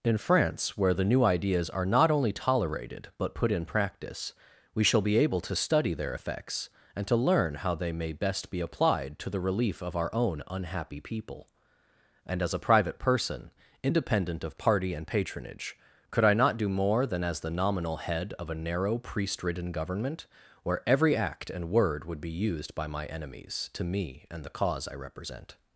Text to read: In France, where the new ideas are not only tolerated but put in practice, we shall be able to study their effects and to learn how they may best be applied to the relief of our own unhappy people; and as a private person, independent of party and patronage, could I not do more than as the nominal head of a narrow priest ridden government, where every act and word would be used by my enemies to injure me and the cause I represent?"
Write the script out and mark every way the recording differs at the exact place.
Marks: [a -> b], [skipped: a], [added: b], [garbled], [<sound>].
In France, where the new ideas are not only tolerated but put in practice, we shall be able to study their effects and to learn how they may best be applied to the relief of our own unhappy people; and as a private person, independent of party and patronage, could I not do more than as the nominal head of a narrow priest ridden government, where every act and word would be used by my enemies to [skipped: injure] me and the cause I represent?"